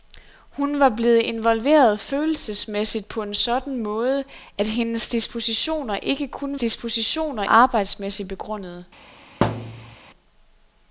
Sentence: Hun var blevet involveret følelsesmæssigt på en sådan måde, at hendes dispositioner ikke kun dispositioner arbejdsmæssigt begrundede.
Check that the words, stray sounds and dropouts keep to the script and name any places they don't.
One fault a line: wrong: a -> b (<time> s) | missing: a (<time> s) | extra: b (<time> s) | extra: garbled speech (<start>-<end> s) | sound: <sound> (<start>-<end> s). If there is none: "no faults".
sound: thud (9.4-10.0 s)